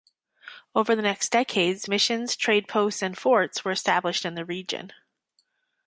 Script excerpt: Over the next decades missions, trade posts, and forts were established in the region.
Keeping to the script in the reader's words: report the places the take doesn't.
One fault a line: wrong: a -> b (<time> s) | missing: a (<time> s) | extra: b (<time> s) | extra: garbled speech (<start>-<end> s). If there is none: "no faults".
no faults